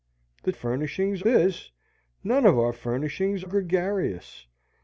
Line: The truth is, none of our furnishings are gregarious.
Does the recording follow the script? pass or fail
fail